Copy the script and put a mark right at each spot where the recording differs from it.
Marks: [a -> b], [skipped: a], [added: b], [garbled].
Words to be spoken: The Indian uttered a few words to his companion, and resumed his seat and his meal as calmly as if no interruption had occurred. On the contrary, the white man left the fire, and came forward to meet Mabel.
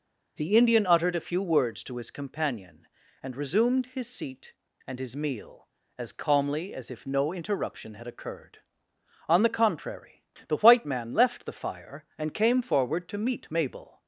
The Indian uttered a few words to his companion, and resumed his seat and his meal as calmly as if no interruption had occurred. On the contrary, the white man left the fire, and came forward to meet Mabel.